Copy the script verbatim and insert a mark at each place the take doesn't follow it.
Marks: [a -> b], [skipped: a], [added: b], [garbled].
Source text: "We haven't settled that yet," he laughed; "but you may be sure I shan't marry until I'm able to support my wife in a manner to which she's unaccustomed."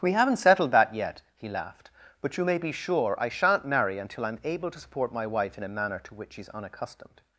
"We haven't settled that yet," he laughed; "but you may be sure I shan't marry until I'm able to support my wife in a manner to which she's unaccustomed."